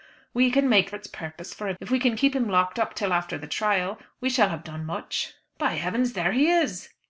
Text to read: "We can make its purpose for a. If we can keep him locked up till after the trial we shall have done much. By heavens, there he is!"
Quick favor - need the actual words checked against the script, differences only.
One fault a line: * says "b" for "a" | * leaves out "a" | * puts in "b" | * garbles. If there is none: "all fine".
all fine